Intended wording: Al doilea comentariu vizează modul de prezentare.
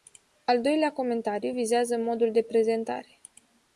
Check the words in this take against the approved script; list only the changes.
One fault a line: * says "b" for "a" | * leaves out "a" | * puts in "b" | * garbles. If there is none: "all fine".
all fine